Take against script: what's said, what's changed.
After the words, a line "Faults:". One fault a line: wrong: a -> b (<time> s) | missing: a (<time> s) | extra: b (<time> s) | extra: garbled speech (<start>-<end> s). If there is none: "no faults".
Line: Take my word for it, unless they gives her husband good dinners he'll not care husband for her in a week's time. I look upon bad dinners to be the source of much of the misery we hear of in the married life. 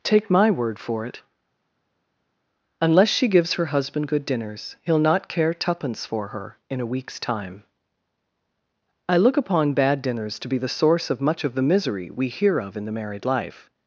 Take my word for it, unless she gives her husband good dinners he'll not care twopence for her in a week's time. I look upon bad dinners to be the source of much of the misery we hear of in the married life.
Faults:
wrong: they -> she (3.1 s)
wrong: husband -> twopence (5.5 s)